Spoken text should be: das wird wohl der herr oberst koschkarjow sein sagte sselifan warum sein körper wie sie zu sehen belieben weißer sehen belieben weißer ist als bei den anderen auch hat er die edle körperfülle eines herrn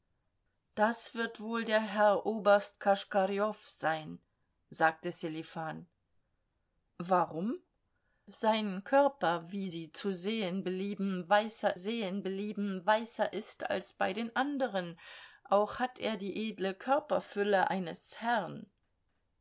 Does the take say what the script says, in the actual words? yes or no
yes